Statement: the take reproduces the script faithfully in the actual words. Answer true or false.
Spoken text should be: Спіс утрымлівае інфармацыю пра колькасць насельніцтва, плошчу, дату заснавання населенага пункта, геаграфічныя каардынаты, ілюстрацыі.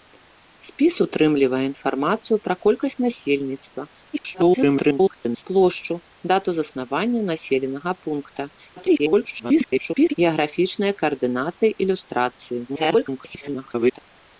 false